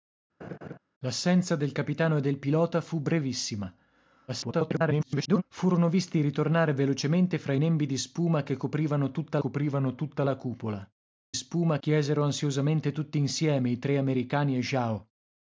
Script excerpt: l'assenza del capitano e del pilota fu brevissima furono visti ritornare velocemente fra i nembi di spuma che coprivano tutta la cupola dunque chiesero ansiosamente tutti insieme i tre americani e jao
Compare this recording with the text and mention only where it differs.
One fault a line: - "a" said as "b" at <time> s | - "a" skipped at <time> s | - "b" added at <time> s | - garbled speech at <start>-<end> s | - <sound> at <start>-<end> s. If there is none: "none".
- laugh at 0.4-0.8 s
- garbled speech at 4.3-5.4 s
- "coprivano tutta" added at 9.4 s
- "dunque" said as "spuma" at 11.3 s